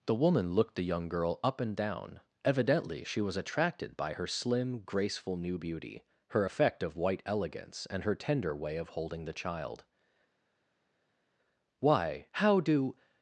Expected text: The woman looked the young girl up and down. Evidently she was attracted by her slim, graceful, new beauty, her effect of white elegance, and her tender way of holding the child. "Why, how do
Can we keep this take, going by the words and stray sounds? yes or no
yes